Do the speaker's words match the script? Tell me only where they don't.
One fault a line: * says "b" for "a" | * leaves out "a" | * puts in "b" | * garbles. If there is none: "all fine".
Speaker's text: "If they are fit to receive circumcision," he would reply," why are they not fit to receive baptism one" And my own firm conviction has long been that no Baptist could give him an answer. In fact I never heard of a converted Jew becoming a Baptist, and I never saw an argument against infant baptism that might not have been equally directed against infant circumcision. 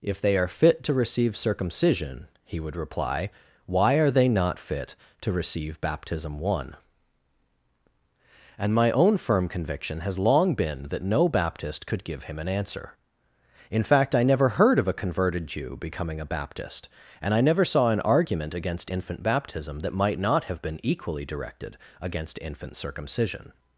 all fine